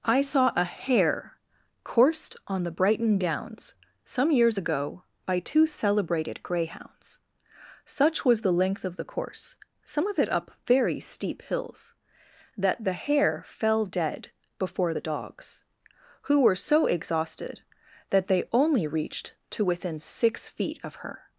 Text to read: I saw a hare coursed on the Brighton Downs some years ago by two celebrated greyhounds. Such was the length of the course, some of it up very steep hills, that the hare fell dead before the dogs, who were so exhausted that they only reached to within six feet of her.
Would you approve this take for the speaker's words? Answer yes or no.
yes